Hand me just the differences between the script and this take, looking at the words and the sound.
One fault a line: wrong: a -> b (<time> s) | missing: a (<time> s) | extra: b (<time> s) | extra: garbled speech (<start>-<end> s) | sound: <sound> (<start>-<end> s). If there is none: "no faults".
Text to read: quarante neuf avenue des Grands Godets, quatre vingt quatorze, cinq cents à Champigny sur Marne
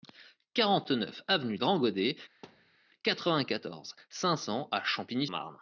missing: des (1.6 s)
sound: thud (2.4-2.8 s)
missing: sur (5.3 s)